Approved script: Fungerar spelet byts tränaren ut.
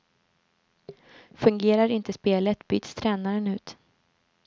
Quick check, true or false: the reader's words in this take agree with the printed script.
false